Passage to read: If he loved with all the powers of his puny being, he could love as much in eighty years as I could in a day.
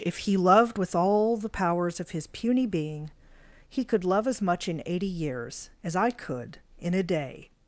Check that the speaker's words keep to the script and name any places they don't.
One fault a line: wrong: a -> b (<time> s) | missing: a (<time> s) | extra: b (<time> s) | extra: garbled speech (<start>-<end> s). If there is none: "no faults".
no faults